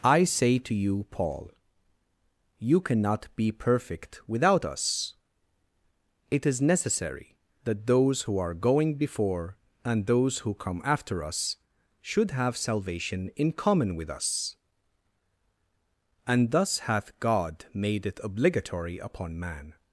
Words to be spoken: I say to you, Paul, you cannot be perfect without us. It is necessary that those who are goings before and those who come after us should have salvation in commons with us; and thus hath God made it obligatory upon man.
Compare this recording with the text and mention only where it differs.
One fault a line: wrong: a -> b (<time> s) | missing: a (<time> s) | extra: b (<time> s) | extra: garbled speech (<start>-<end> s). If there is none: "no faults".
wrong: goings -> going (8.6 s)
wrong: commons -> common (13.5 s)